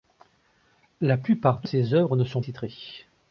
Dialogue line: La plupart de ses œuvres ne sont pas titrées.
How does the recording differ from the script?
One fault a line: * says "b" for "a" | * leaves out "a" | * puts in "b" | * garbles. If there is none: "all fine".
* leaves out "pas"